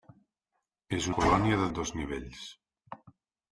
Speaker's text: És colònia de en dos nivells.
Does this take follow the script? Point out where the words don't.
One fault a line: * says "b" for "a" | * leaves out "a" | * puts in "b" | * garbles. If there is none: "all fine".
all fine